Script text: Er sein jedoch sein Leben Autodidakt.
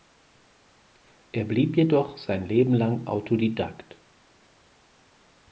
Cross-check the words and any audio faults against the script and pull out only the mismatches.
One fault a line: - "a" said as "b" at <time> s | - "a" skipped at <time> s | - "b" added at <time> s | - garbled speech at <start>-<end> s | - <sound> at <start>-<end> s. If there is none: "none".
- "sein" said as "blieb" at 1.4 s
- "lang" added at 2.7 s